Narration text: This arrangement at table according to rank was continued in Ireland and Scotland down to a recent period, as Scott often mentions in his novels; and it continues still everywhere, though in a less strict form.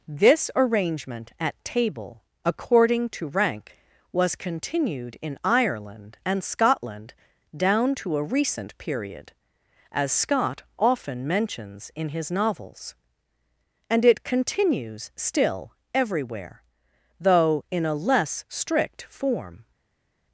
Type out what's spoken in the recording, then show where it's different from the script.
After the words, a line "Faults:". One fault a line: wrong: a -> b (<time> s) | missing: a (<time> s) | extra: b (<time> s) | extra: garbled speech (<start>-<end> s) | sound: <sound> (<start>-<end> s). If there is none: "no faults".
This arrangement at table according to rank was continued in Ireland and Scotland down to a recent period, as Scott often mentions in his novels; and it continues still everywhere, though in a less strict form.
Faults:
no faults